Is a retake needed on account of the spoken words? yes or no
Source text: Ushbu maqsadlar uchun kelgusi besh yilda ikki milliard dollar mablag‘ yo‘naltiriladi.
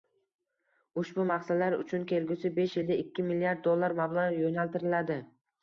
no